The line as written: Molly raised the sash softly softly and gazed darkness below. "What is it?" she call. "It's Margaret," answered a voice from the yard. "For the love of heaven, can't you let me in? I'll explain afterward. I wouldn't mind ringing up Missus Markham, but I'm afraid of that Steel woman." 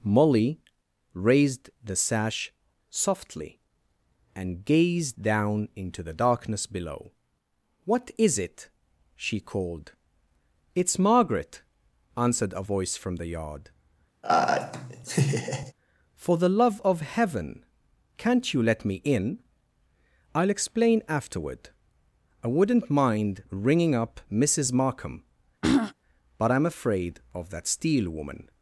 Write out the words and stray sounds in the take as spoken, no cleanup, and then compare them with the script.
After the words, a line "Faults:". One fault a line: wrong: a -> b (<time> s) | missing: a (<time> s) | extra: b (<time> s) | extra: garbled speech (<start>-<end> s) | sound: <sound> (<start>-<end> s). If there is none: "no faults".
Molly raised the sash softly and gazed down into the darkness below. "What is it?" she called. "It's Margaret," answered a voice from the yard. "For the love of heaven, can't you let me in? I'll explain afterward. I wouldn't mind ringing up Missus Markham, but I'm afraid of that Steel woman."
Faults:
missing: softly (3.6 s)
extra: down into the (5.2 s)
wrong: call -> called (9.4 s)
sound: laugh (14.2-15.7 s)
sound: throat clearing (25.6-25.9 s)